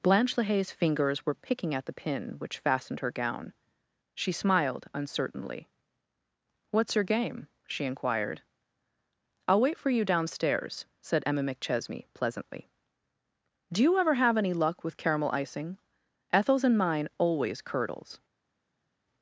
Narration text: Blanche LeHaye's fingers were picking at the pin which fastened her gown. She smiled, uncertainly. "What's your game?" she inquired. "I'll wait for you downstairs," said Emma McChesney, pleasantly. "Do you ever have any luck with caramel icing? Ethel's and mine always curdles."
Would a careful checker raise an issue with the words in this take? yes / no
no